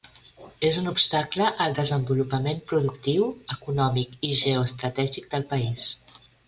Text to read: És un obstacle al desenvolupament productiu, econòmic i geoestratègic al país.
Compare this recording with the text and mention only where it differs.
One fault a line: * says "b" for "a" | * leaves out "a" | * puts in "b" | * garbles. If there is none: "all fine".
* says "del" for "al"